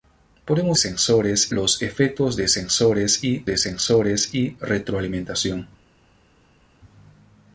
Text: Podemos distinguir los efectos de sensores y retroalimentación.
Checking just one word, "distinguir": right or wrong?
wrong